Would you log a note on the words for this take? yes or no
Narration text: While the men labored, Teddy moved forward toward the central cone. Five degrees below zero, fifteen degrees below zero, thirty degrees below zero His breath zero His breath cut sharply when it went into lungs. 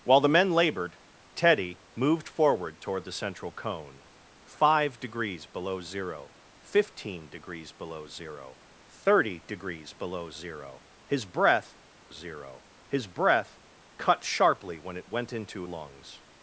no